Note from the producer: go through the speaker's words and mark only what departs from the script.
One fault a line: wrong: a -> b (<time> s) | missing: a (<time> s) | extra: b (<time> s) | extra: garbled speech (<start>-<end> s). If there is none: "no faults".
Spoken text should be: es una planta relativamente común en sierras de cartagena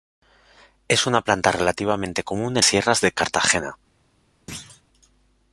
no faults